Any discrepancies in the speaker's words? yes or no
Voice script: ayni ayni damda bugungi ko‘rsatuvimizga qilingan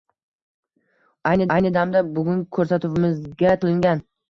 no